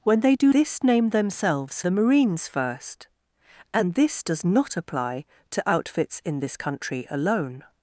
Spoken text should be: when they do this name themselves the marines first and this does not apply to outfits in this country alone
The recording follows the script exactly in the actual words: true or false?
true